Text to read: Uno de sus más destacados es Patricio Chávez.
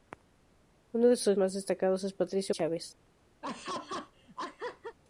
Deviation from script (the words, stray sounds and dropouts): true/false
true